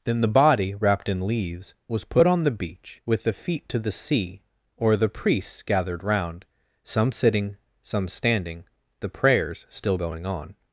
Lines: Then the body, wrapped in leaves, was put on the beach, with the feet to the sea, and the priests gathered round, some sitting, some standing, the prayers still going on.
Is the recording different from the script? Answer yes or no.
yes